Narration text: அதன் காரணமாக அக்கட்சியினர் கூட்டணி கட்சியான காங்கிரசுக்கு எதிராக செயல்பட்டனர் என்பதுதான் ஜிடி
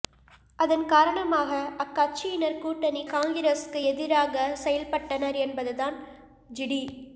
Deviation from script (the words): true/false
true